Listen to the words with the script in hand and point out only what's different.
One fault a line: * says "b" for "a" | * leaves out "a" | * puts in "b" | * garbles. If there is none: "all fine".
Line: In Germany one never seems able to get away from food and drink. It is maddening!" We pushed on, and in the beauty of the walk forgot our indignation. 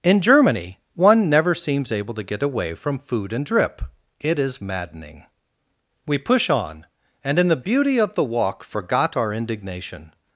* says "drip" for "drink"
* says "push" for "pushed"